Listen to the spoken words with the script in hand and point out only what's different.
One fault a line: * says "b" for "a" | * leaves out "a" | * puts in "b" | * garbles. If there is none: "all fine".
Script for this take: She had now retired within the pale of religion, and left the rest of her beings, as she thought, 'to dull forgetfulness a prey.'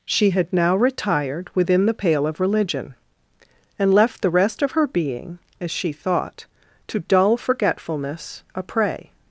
* says "being" for "beings"